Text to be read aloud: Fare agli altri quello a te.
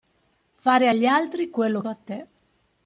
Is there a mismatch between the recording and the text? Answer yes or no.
no